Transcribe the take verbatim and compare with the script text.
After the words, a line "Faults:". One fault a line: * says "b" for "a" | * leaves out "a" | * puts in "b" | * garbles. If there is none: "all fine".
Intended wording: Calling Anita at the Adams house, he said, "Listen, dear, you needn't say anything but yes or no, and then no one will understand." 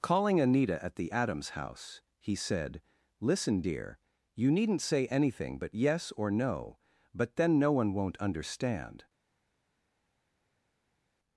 Calling Anita at the Adams house, he said, "Listen, dear, you needn't say anything but yes or no, but then no one won't understand."
Faults:
* says "but" for "and"
* says "won't" for "will"